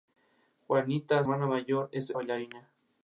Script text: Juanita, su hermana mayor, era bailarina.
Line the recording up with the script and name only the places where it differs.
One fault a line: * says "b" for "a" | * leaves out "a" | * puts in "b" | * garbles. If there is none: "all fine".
* leaves out "su"
* leaves out "era"